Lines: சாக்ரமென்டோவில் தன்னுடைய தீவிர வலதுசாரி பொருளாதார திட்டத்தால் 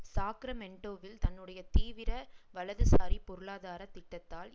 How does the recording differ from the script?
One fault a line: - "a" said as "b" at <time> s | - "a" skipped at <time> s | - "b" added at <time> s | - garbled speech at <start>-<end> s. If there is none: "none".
none